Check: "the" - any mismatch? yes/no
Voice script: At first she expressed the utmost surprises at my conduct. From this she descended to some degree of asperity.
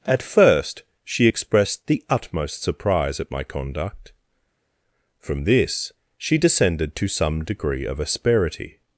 no